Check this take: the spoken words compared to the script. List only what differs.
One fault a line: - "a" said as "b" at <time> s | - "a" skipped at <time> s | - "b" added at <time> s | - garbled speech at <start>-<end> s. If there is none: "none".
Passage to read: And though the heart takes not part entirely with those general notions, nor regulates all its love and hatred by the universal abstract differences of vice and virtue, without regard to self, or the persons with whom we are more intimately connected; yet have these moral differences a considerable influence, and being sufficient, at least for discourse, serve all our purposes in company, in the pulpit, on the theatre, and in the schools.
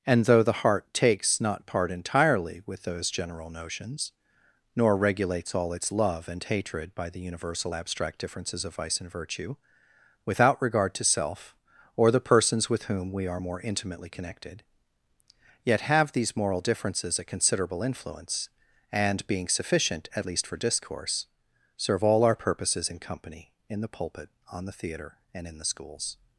none